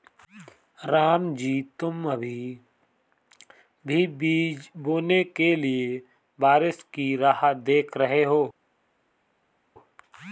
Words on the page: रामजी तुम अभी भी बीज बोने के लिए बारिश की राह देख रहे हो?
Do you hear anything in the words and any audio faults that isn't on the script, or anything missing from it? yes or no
no